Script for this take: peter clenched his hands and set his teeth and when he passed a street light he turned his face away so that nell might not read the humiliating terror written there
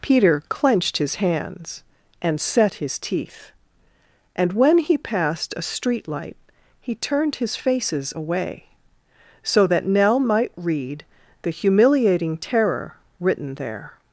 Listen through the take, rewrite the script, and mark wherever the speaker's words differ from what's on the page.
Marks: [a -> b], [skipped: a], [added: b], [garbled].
peter clenched his hands and set his teeth and when he passed a street light he turned his [face -> faces] away so that nell might [skipped: not] read the humiliating terror written there